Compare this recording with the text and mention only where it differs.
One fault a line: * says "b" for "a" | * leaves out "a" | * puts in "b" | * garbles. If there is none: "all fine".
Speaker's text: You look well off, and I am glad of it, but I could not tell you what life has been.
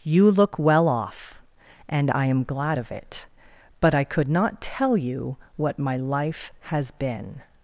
* puts in "my"